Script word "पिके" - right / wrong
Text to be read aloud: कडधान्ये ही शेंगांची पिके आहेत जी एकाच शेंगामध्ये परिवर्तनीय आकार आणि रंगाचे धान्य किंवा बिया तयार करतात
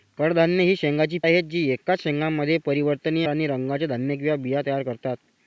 wrong